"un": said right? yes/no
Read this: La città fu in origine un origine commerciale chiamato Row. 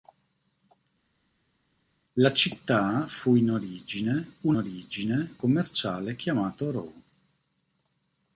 yes